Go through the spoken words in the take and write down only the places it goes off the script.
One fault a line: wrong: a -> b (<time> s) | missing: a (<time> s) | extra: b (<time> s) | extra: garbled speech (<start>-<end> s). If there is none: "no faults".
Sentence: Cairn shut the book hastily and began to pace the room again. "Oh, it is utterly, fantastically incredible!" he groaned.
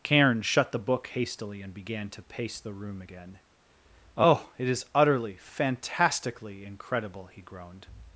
no faults